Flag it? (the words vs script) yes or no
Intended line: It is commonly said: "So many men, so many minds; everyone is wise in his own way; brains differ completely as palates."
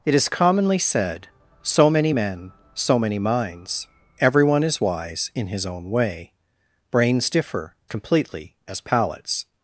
no